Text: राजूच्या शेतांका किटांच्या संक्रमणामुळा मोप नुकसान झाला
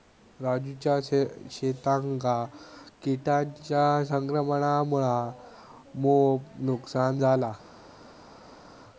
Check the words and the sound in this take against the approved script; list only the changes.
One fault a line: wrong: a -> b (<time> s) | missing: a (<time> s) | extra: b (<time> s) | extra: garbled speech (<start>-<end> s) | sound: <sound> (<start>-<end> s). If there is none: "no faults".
no faults